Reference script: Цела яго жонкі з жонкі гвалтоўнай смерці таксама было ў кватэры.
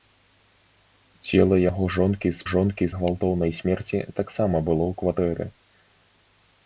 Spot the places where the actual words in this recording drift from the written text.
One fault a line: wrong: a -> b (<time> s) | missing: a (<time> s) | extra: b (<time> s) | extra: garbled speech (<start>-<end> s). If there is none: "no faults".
no faults